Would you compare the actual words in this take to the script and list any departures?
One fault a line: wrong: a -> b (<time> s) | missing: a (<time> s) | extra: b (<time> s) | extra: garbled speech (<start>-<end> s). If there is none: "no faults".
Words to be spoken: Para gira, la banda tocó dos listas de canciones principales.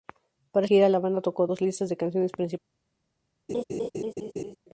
no faults